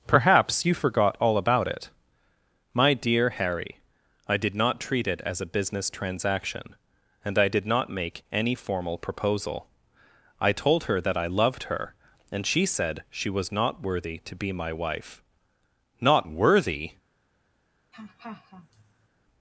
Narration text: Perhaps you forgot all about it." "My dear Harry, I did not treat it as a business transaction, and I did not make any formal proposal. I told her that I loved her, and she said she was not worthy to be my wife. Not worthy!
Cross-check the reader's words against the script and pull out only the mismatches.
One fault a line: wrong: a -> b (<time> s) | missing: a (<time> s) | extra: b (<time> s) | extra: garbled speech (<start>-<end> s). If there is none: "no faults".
no faults